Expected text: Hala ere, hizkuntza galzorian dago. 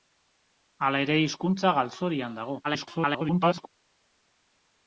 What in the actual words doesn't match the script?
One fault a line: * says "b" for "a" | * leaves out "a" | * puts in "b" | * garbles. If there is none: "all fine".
* garbles